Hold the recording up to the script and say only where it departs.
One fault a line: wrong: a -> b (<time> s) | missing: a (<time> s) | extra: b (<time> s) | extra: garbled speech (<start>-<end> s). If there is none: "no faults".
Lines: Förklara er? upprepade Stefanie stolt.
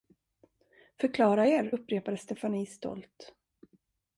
no faults